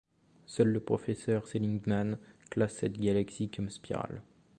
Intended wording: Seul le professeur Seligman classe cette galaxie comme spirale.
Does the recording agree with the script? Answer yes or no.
yes